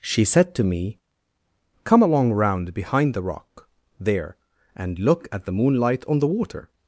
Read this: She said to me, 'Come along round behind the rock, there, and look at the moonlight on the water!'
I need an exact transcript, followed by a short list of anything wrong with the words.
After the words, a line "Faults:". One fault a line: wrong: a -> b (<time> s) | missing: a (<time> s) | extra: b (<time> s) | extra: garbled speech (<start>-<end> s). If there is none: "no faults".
She said to me, 'Come along round behind the rock, there, and look at the moonlight on the water!'
Faults:
no faults